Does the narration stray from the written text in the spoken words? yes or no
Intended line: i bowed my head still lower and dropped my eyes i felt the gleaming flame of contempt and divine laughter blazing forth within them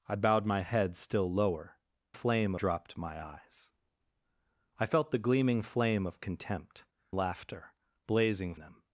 yes